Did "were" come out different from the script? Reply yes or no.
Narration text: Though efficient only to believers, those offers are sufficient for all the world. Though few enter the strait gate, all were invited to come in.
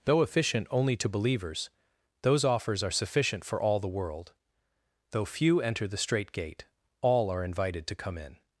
yes